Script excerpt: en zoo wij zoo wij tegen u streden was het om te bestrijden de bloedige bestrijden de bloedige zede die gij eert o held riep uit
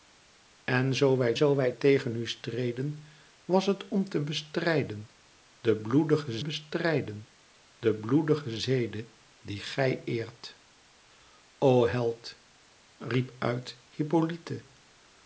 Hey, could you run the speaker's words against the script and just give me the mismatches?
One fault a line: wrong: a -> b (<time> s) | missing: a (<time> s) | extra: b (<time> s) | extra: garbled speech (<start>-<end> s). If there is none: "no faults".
no faults